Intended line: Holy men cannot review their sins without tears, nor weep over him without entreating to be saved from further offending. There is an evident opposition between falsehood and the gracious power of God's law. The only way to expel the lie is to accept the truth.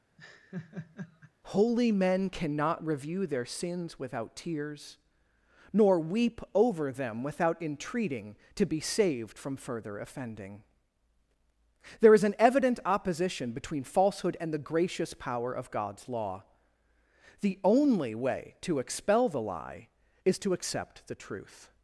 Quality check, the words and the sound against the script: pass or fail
fail